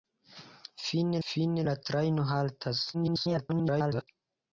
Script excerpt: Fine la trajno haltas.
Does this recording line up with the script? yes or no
no